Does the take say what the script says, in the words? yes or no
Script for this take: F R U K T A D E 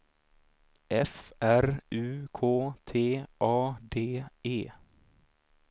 yes